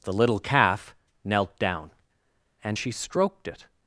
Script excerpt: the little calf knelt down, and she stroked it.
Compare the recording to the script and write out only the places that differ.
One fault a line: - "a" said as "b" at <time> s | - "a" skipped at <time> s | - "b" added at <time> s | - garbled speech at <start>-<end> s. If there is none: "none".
none